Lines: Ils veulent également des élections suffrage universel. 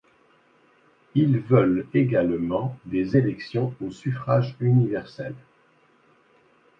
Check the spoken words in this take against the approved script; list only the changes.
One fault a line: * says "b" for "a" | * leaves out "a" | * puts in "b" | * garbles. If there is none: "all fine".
* puts in "au"